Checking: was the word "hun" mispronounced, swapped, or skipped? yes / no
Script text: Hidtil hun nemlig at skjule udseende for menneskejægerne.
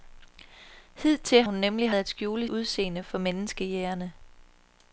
no